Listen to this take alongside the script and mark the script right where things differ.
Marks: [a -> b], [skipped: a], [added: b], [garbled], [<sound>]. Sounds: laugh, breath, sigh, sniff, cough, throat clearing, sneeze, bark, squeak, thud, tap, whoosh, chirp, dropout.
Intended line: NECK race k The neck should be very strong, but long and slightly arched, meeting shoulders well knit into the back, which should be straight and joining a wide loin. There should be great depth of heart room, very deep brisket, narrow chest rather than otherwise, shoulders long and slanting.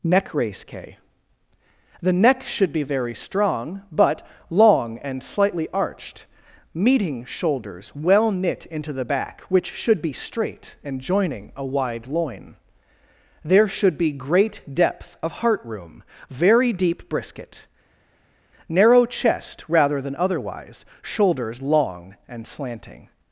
NECK race k The neck should be very strong, but long and slightly arched, meeting shoulders well knit into the back, which should be straight and joining a wide loin. There should be great depth of heart room, very deep brisket, narrow chest rather than otherwise, shoulders long and slanting.